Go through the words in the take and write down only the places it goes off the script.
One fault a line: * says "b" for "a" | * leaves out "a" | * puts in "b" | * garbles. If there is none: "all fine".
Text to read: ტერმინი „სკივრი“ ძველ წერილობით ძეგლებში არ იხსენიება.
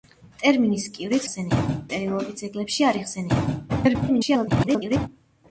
* says "იხსენიება" for "ძველ"
* garbles